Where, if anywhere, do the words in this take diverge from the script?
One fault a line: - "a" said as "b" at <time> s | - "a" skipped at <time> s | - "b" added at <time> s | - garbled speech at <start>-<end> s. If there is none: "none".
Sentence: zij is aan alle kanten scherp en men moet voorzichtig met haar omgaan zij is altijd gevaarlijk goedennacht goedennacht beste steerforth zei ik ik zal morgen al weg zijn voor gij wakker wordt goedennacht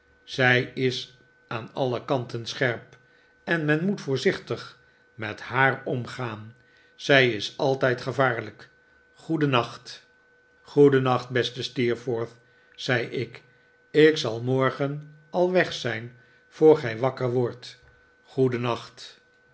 none